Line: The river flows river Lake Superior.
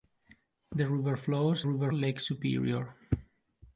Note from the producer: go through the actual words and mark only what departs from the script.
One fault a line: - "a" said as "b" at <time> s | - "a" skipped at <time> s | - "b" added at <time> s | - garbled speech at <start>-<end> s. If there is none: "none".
none